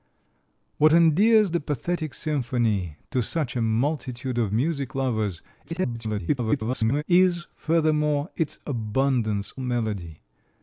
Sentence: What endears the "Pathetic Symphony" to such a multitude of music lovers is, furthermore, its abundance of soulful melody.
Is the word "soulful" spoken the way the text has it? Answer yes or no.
no